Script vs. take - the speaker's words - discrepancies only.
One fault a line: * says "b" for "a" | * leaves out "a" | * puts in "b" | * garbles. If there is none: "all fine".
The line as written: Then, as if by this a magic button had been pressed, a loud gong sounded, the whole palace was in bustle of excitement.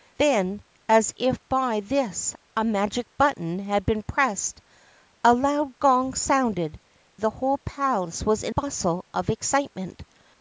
all fine